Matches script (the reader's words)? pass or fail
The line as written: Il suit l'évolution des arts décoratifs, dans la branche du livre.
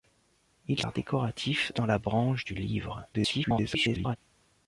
fail